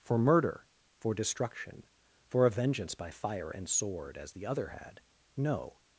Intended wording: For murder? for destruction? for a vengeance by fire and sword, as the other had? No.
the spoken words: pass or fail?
pass